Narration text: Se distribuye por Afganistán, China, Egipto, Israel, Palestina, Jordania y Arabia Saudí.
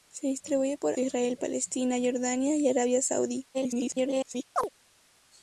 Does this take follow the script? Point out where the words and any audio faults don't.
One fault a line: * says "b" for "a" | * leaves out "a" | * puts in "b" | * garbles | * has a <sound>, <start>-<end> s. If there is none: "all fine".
* leaves out "Afganistán China Egipto"
* garbles
* has a chirp, 4.6-4.7 s